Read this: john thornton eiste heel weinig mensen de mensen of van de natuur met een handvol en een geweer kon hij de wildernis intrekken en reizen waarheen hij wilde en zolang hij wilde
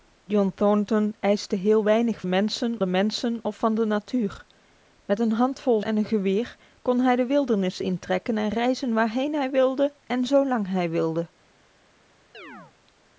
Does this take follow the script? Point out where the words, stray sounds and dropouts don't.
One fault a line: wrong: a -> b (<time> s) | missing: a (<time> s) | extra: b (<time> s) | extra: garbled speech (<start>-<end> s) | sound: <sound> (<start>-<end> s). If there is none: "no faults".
sound: chirp (12.3-12.7 s)